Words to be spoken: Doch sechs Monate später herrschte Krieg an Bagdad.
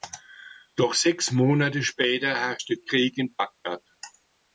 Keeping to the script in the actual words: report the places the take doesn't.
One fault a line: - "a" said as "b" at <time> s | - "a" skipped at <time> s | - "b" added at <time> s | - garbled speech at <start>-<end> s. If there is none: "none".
- "an" said as "in" at 3.2 s